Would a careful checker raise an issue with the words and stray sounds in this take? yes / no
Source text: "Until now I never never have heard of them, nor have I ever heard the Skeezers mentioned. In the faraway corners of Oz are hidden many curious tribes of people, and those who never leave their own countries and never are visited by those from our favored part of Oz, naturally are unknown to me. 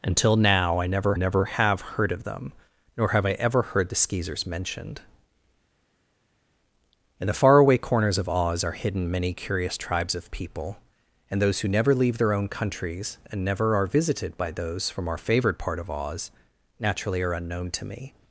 no